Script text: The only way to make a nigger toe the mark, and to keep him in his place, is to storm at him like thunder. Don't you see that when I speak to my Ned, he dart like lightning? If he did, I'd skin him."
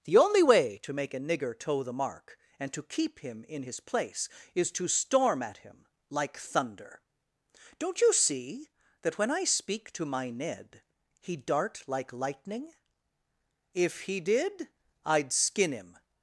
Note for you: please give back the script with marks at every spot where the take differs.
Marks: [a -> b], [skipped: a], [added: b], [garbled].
The only way to make a nigger toe the mark, and to keep him in his place, is to storm at him like thunder. Don't you see that when I speak to my Ned, he dart like lightning? If he did, I'd skin him."